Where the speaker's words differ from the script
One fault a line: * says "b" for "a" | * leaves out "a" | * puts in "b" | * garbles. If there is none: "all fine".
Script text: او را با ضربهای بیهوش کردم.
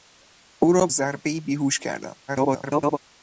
* leaves out "با"
* garbles